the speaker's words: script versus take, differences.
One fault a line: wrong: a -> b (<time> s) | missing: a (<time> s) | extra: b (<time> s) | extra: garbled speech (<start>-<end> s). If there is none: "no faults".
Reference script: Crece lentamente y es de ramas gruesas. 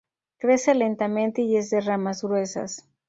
no faults